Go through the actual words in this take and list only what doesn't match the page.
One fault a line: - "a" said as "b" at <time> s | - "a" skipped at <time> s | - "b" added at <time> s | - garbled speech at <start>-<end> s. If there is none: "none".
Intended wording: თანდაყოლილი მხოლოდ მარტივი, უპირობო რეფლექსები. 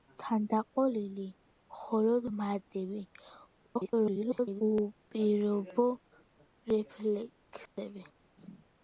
- garbled speech at 3.7-4.6 s